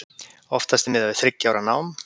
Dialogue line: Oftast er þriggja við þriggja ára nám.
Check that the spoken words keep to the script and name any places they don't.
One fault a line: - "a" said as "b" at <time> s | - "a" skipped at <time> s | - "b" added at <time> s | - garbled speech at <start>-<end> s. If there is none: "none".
- "þriggja" said as "miðað" at 0.9 s